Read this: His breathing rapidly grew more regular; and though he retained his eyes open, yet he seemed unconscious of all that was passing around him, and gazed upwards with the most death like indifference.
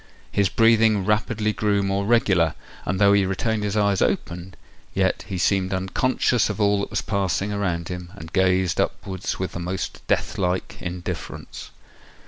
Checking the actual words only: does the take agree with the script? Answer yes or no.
yes